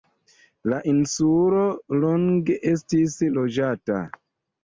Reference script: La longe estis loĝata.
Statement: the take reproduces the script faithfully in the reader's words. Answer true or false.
false